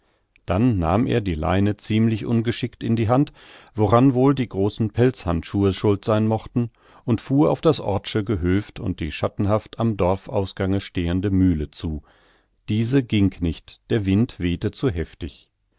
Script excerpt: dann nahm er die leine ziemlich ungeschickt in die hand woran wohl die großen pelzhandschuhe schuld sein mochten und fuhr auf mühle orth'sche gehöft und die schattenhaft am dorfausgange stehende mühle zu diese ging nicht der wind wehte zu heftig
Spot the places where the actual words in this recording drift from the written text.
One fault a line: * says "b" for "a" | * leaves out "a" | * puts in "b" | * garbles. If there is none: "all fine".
* says "das" for "mühle"